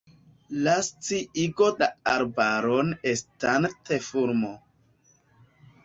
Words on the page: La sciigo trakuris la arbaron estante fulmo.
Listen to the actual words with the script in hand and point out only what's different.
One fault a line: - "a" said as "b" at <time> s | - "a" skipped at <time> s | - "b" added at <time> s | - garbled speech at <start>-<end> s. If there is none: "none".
- "trakuris" skipped at 1.7 s